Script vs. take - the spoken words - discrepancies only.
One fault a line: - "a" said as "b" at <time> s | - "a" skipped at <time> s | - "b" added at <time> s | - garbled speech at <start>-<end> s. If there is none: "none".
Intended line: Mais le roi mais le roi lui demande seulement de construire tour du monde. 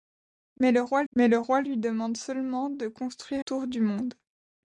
none